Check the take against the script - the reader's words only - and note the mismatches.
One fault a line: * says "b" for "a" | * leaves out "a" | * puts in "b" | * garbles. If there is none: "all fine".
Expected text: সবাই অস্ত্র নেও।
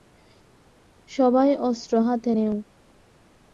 * puts in "হাতে"